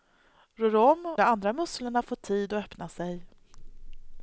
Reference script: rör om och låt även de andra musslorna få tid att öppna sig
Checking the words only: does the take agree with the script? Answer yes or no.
no